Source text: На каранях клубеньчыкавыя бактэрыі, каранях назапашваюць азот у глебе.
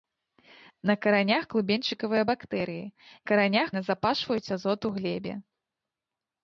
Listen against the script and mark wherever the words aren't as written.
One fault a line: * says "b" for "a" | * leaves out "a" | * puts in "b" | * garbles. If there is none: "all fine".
all fine